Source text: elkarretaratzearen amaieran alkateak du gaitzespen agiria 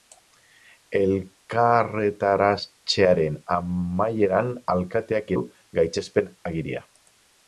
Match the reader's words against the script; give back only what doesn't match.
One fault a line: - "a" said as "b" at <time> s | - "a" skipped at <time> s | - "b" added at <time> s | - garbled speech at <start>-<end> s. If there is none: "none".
none